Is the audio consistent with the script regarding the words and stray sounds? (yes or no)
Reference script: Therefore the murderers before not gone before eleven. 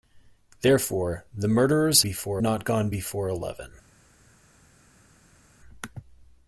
yes